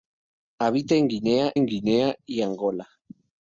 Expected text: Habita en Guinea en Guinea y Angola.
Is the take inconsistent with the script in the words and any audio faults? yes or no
no